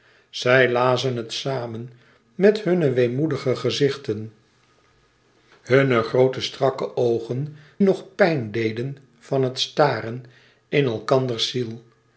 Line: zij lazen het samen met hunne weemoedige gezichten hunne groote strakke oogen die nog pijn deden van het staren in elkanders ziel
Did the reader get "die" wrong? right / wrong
wrong